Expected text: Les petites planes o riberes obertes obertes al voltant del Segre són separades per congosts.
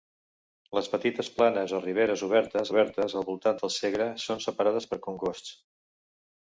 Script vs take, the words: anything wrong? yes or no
no